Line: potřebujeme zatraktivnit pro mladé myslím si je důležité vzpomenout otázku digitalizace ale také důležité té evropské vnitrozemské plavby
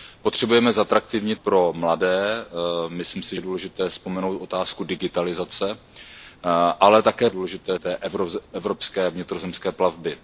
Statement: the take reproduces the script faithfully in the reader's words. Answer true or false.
true